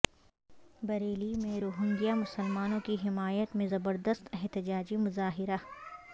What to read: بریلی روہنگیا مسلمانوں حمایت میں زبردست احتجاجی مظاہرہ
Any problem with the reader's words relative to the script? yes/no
yes